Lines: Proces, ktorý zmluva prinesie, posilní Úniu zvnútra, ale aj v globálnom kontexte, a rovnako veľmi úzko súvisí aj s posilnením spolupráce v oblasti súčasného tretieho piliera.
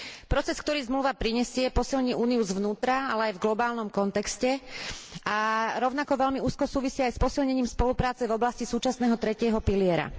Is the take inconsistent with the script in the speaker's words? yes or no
no